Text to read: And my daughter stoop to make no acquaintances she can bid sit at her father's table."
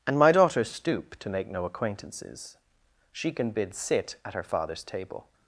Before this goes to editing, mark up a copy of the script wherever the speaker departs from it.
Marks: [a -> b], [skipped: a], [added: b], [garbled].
And my daughter stoop to make no acquaintances she can bid sit at her father's table."